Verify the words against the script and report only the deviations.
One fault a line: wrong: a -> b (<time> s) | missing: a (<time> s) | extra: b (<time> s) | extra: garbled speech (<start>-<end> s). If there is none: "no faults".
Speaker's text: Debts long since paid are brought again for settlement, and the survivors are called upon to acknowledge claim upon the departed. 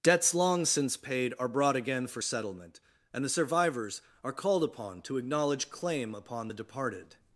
no faults